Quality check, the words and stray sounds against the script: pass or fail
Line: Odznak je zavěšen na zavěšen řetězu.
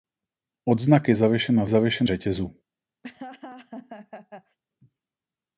fail